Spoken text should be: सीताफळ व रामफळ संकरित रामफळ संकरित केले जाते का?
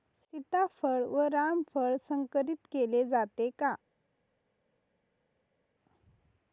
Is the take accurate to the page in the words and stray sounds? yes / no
no